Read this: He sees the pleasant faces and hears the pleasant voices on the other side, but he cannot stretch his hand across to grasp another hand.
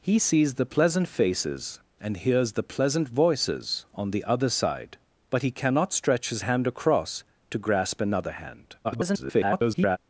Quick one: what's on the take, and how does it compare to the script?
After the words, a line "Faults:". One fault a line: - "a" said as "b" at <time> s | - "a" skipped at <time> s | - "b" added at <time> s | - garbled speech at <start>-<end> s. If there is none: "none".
He sees the pleasant faces and hears the pleasant voices on the other side, but he cannot stretch his hand across to grasp another hand. [garbled]
Faults:
- garbled speech at 8.8-10.0 s